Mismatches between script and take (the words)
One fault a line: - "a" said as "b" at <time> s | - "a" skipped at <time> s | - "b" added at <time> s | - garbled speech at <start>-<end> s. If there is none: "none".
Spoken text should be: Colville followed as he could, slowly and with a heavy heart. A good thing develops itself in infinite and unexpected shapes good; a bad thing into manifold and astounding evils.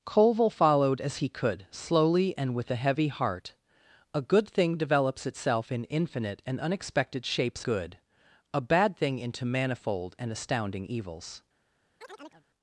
none